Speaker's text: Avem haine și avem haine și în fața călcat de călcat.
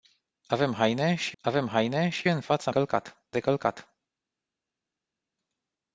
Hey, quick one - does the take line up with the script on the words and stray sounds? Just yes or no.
yes